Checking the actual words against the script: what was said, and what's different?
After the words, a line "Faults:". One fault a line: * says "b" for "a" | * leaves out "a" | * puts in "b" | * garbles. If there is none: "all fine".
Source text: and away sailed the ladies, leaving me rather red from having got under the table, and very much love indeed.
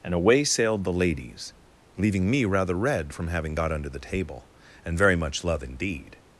and away sailed the ladies, leaving me rather red from having got under the table, and very much love indeed.
Faults:
all fine